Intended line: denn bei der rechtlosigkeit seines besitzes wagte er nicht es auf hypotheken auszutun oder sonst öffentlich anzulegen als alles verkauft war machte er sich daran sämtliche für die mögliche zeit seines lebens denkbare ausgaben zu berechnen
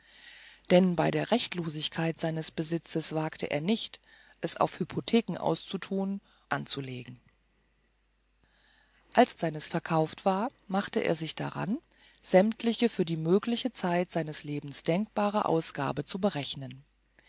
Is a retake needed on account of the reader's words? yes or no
yes